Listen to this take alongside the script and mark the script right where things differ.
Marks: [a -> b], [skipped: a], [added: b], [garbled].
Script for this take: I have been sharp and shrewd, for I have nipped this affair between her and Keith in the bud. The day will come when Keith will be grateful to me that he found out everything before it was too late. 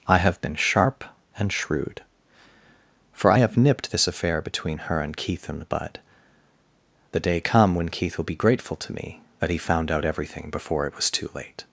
I have been sharp and shrewd, for I have nipped this affair between her and Keith in the bud. The day [skipped: will] come when Keith will be grateful to me that he found out everything before it was too late.